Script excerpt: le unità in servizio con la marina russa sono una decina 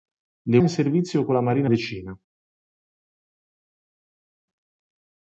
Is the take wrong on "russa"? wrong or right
wrong